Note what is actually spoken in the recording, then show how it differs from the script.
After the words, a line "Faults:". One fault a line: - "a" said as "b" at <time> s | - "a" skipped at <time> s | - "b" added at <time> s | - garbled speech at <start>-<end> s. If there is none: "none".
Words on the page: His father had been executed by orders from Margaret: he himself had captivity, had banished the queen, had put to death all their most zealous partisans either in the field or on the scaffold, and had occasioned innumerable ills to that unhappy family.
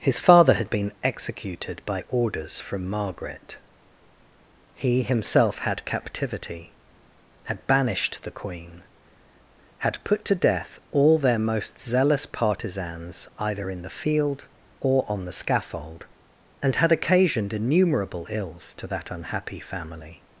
His father had been executed by orders from Margaret: he himself had captivity, had banished the queen, had put to death all their most zealous partisans either in the field or on the scaffold, and had occasioned innumerable ills to that unhappy family.
Faults:
none